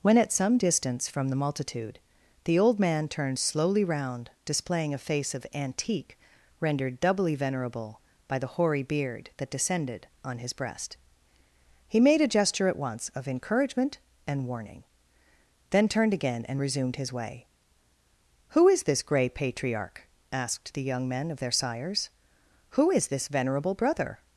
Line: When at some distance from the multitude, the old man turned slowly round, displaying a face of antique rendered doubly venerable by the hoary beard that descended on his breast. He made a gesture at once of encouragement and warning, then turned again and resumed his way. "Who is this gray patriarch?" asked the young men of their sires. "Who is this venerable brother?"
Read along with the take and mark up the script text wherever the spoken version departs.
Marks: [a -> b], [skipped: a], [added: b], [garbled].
When at some distance from the multitude, the old man turned slowly round, displaying a face of antique rendered doubly venerable by the hoary beard that descended on his breast. He made a gesture at once of encouragement and warning, then turned again and resumed his way. "Who is this gray patriarch?" asked the young men of their sires. "Who is this venerable brother?"